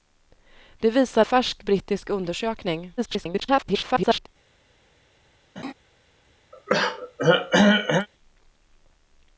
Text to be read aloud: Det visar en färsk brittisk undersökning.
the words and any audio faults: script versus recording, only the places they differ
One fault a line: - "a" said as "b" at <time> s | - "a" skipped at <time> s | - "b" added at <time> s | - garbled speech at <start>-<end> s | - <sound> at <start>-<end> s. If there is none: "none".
- "en" skipped at 1.2 s
- garbled speech at 3.0-4.3 s
- laugh at 5.6-5.7 s
- throat clearing at 6.5-8.1 s